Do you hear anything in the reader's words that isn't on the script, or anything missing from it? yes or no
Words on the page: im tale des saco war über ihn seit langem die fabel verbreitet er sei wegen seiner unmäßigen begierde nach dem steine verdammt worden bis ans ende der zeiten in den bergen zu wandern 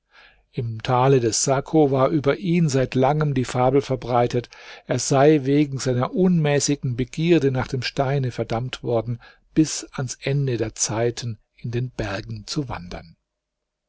no